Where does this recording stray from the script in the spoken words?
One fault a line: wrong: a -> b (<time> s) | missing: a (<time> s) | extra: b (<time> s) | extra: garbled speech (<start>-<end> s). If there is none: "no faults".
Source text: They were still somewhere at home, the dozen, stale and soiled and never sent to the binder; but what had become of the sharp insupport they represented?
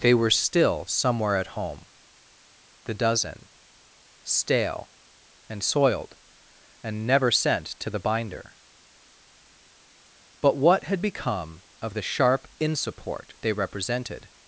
no faults